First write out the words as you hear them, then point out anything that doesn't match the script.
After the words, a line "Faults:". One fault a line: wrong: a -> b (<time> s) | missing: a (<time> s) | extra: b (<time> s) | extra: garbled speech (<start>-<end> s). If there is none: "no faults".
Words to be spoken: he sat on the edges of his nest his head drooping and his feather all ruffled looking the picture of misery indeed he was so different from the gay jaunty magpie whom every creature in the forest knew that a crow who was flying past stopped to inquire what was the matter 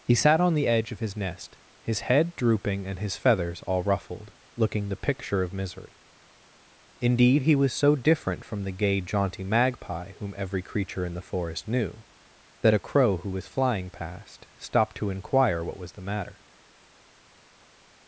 he sat on the edge of his nest his head drooping and his feathers all ruffled looking the picture of misery indeed he was so different from the gay jaunty magpie whom every creature in the forest knew that a crow who was flying past stopped to inquire what was the matter
Faults:
wrong: edges -> edge (0.7 s)
wrong: feather -> feathers (3.2 s)